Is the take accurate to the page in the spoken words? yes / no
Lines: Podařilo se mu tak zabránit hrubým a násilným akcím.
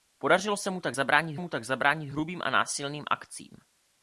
no